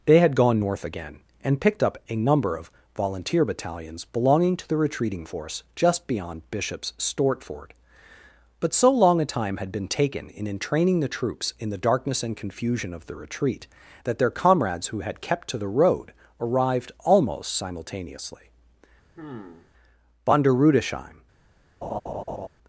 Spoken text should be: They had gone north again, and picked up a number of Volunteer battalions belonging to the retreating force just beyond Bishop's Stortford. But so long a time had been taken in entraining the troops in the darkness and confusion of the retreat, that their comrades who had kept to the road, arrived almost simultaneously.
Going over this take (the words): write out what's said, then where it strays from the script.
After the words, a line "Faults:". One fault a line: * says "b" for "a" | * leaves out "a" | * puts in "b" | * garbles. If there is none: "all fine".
They had gone north again, and picked up a number of Volunteer battalions belonging to the retreating force just beyond Bishop's Stortford. But so long a time had been taken in entraining the troops in the darkness and confusion of the retreat, that their comrades who had kept to the road, arrived almost simultaneously. Von der Rudesheim
Faults:
* puts in "Von der Rudesheim"